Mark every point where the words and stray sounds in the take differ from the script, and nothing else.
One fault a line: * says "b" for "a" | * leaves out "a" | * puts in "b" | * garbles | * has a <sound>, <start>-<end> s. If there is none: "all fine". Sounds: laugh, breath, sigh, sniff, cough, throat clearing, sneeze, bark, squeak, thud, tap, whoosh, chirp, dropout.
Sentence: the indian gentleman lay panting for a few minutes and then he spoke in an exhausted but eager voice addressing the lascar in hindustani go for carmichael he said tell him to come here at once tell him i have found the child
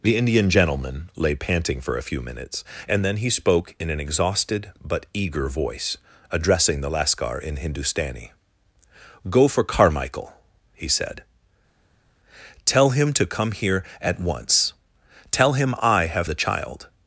* leaves out "found"